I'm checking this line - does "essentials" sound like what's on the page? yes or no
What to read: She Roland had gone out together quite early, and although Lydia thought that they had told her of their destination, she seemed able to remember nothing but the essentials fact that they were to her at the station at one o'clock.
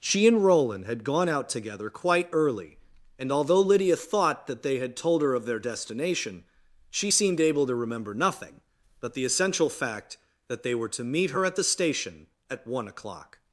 no